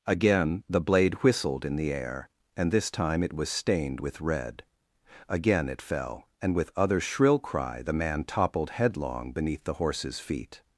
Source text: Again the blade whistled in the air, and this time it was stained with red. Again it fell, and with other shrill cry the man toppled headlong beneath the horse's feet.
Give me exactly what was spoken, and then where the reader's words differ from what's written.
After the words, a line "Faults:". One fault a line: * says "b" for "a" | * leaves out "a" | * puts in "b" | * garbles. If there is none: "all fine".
Again the blade whistled in the air, and this time it was stained with red. Again it fell, and with other shrill cry the man toppled headlong beneath the horse's feet.
Faults:
all fine